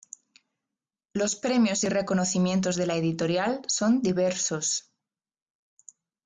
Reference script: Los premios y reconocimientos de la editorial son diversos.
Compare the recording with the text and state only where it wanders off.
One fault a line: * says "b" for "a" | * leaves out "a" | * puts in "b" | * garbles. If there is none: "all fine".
all fine